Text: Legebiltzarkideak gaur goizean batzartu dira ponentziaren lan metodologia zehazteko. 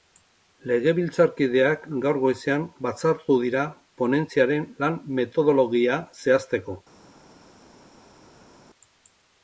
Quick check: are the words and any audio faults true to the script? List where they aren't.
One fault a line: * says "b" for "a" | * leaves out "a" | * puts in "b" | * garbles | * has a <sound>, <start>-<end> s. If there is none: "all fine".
all fine